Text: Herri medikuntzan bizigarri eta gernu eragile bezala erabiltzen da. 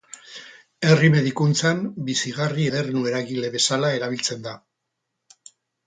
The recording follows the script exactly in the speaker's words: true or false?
false